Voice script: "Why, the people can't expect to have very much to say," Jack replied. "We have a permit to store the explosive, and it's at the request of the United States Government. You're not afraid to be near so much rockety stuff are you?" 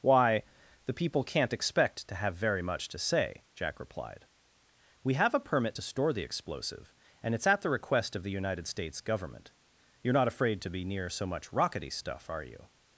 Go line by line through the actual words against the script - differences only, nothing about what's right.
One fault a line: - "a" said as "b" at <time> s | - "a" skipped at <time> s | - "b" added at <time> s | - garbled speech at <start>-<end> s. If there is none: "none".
none